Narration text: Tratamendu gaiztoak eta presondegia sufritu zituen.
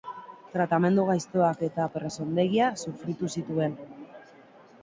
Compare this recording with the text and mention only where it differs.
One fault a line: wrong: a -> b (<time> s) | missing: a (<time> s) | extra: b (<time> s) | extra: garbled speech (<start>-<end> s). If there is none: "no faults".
no faults